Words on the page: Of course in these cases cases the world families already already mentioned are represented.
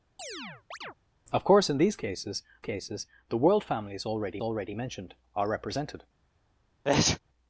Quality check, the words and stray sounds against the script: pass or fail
fail